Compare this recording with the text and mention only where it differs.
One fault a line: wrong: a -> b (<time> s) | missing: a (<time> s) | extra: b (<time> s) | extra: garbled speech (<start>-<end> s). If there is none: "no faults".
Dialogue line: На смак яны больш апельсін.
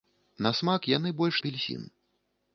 no faults